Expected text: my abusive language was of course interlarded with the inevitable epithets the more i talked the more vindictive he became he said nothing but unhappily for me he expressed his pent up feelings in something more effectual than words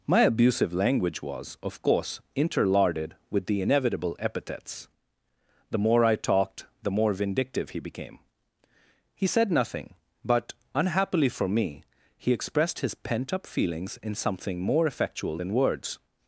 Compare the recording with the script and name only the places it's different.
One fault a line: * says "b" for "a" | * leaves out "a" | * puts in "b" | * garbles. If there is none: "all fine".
all fine